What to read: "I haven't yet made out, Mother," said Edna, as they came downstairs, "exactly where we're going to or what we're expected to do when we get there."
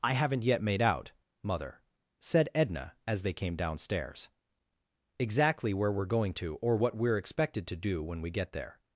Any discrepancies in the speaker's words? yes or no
no